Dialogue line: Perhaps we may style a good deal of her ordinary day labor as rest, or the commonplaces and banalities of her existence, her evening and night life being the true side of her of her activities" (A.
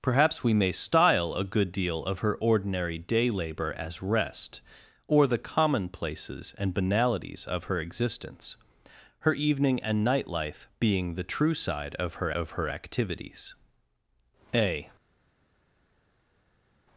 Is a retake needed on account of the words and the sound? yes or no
no